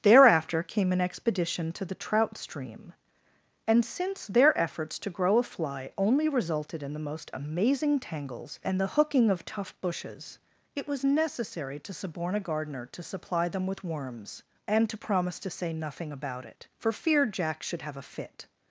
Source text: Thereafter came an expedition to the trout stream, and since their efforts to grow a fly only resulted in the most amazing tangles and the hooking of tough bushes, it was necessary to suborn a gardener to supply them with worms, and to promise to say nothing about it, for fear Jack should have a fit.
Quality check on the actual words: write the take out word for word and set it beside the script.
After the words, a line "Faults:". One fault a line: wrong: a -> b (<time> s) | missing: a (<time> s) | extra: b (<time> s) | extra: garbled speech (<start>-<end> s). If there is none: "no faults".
Thereafter came an expedition to the trout stream, and since their efforts to grow a fly only resulted in the most amazing tangles and the hooking of tough bushes, it was necessary to suborn a gardener to supply them with worms, and to promise to say nothing about it, for fear Jack should have a fit.
Faults:
no faults